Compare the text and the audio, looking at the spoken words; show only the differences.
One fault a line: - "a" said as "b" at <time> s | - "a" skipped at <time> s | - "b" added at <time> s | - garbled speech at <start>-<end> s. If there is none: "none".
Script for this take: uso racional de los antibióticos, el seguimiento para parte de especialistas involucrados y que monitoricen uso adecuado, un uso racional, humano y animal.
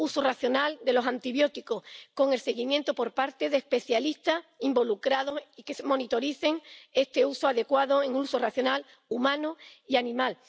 - "con" added at 2.1 s
- "para" said as "por" at 2.9 s
- "este" added at 6.9 s